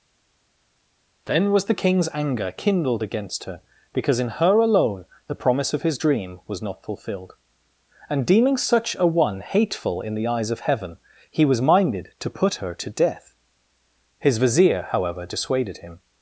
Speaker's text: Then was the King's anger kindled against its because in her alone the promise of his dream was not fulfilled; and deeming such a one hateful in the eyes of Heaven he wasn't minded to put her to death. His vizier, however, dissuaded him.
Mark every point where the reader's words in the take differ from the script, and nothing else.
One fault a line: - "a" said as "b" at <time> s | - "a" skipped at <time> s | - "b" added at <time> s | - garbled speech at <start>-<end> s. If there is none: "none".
- "its" said as "her" at 3.4 s
- "wasn't" said as "was" at 11.4 s